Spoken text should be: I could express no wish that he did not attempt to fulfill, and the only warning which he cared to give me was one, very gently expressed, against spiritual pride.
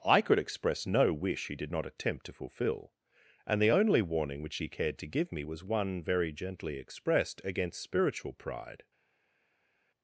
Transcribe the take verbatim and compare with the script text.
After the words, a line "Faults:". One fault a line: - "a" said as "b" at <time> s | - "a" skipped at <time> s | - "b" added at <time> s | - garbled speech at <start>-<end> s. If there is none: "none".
I could express no wish he did not attempt to fulfill, and the only warning which he cared to give me was one, very gently expressed, against spiritual pride.
Faults:
- "that" skipped at 1.5 s